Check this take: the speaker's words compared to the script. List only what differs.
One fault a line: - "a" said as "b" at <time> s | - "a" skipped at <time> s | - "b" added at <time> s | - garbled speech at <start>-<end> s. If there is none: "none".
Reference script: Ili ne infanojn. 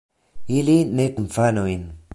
none